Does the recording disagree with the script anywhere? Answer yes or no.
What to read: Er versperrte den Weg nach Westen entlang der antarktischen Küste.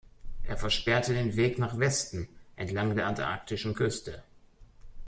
no